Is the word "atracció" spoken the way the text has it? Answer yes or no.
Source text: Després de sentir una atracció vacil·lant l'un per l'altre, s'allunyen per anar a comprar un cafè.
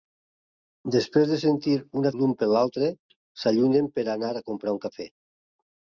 no